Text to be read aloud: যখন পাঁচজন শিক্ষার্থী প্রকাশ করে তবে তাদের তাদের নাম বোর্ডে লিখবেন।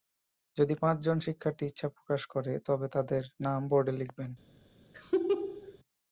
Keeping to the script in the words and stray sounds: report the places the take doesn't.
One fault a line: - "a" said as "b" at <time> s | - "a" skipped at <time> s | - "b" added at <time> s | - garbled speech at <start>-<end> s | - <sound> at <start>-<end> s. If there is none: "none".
- "যখন" said as "যদি" at 0.6 s
- "ইচ্ছা" added at 1.7 s
- "তাদের" skipped at 3.2 s
- laugh at 4.9-5.8 s